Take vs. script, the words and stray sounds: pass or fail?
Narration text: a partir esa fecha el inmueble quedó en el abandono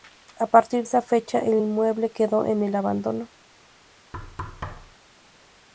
fail